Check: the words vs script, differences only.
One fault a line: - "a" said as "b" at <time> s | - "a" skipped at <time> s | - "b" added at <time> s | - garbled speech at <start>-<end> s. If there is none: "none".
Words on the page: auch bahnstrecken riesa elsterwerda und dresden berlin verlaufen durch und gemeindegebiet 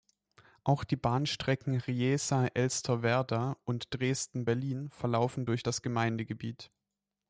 - "die" added at 0.8 s
- "und" said as "das" at 5.6 s